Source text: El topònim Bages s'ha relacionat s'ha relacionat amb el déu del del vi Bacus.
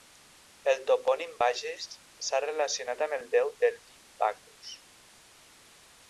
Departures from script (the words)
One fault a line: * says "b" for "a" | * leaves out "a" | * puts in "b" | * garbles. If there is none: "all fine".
* leaves out "s'ha relacionat"
* leaves out "del"